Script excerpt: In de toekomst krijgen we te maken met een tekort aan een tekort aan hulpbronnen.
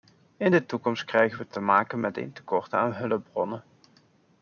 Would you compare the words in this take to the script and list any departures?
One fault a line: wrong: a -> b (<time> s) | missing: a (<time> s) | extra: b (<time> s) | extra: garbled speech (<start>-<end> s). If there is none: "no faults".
missing: een tekort aan (2.9 s)